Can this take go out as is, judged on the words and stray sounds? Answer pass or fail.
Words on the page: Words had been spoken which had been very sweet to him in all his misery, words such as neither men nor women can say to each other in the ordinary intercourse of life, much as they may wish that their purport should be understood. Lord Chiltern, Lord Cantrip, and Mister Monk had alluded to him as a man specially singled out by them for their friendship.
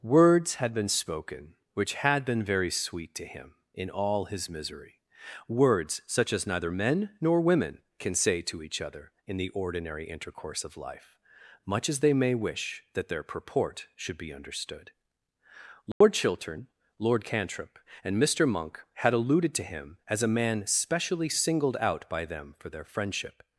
fail